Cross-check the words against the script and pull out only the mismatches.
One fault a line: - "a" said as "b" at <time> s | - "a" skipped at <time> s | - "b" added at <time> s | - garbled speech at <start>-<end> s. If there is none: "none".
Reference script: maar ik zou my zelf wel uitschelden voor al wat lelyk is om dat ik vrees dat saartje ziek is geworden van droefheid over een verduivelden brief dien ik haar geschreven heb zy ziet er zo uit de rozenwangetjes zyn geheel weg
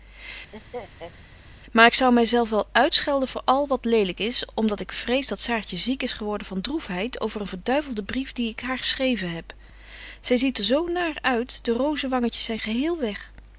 - "naar" added at 10.9 s